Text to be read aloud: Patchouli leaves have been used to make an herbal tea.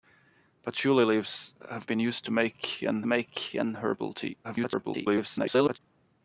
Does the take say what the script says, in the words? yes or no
no